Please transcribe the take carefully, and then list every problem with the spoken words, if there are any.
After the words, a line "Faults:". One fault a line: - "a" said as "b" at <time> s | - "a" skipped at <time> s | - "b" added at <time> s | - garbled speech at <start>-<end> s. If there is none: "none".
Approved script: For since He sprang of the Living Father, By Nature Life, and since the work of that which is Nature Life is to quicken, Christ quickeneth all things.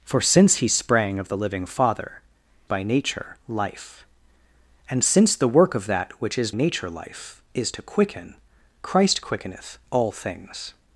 For since He sprang of the Living Father, By Nature Life, and since the work of that which is Nature Life is to quicken, Christ quickeneth all things.
Faults:
none